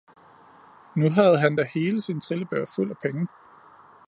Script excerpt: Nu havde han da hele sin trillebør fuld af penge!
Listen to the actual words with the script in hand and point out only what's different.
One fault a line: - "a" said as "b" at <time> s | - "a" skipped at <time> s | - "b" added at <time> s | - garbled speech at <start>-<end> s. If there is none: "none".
none